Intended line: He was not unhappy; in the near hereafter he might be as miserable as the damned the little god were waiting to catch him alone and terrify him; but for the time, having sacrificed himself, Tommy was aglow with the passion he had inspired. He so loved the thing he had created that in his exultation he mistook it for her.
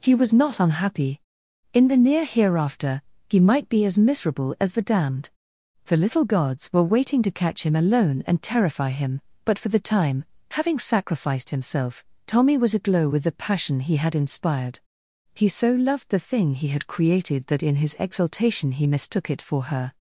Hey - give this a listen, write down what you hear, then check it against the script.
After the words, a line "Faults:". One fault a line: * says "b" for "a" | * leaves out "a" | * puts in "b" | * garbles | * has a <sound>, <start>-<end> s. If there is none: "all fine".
He was not unhappy; in the near hereafter he might be as miserable as the damned the little gods were waiting to catch him alone and terrify him; but for the time, having sacrificed himself, Tommy was aglow with the passion he had inspired. He so loved the thing he had created that in his exultation he mistook it for her.
Faults:
* says "gods" for "god"